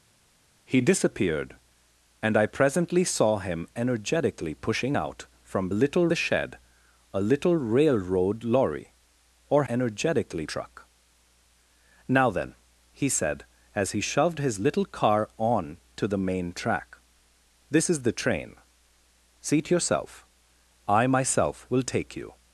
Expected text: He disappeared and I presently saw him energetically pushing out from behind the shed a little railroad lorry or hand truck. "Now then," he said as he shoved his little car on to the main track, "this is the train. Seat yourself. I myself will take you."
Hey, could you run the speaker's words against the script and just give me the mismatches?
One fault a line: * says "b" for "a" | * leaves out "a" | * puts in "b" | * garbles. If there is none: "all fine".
* says "little" for "behind"
* says "energetically" for "hand"